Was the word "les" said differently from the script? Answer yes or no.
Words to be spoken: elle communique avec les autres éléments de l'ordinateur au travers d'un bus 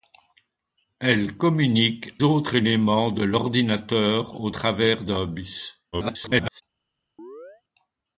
yes